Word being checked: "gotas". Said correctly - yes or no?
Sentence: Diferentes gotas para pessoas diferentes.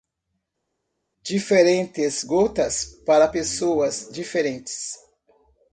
yes